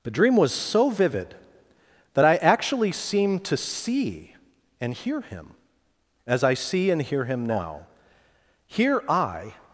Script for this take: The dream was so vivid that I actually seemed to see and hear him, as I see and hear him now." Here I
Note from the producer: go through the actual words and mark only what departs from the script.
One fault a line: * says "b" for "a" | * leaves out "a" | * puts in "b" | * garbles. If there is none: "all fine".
all fine